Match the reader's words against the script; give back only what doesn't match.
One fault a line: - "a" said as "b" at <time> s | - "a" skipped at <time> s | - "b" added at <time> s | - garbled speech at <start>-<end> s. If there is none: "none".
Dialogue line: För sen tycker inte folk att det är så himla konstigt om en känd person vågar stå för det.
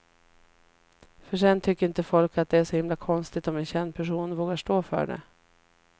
none